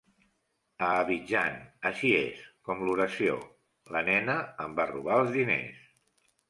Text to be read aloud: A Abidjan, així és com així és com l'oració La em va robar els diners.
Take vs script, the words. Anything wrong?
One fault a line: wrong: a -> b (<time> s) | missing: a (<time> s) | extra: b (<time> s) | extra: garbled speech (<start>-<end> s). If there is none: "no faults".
missing: així és com (2.9 s)
extra: nena (4.1 s)